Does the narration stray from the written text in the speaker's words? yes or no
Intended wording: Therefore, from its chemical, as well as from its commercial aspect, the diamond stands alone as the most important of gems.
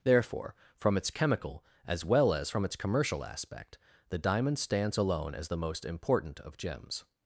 no